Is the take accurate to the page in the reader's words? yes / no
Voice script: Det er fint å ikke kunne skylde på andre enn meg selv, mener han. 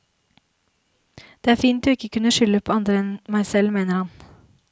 yes